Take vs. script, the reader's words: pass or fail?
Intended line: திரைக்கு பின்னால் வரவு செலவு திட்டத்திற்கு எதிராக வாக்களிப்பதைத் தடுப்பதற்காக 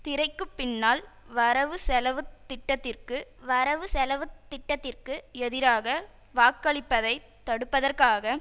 fail